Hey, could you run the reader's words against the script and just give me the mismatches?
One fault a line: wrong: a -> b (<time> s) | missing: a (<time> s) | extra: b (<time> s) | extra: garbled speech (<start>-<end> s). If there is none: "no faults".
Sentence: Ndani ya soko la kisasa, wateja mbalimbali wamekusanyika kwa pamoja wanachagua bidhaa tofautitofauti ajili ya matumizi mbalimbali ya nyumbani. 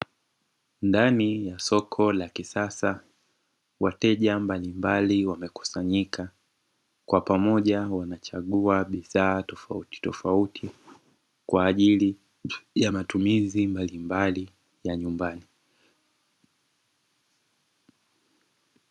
extra: kwa (11.5 s)